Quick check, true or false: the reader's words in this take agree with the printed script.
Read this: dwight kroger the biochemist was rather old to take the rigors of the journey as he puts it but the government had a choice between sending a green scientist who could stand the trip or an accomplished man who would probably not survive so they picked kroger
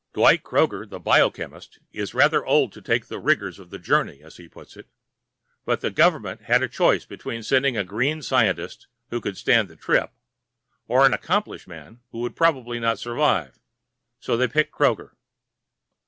false